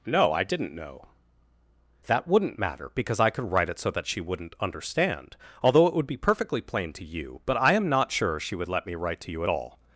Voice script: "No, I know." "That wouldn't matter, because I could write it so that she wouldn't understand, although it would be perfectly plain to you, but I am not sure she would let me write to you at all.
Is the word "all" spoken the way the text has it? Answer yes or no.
yes